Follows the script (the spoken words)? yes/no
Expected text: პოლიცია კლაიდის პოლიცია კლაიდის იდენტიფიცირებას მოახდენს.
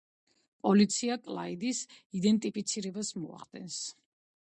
no